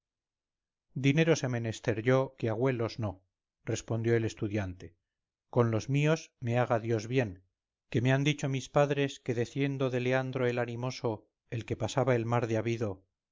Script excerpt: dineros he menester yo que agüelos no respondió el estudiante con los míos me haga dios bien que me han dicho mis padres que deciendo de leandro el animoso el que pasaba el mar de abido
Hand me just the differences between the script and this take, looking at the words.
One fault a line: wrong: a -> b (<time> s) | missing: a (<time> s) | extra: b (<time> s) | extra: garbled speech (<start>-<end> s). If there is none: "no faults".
no faults